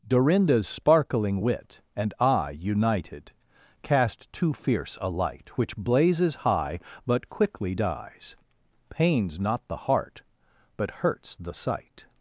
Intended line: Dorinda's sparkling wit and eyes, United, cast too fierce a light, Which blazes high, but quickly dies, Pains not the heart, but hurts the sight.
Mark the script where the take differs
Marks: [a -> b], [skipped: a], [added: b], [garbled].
Dorinda's sparkling wit and [eyes, -> eye] United, cast too fierce a light, Which blazes high, but quickly dies, Pains not the heart, but hurts the sight.